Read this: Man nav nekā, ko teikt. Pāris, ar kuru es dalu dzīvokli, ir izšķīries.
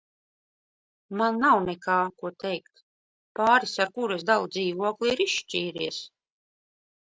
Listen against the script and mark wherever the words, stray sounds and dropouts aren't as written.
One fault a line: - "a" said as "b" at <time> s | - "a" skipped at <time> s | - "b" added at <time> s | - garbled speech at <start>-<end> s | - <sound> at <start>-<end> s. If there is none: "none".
none